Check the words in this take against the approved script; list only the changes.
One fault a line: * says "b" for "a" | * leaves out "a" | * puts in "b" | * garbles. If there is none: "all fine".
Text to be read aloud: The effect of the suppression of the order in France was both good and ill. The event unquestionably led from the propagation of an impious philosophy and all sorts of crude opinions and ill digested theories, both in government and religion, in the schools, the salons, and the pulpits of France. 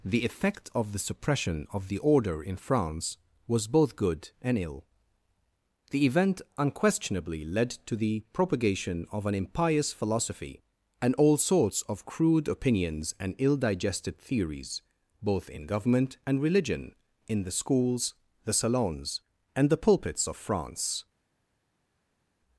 * says "to" for "from"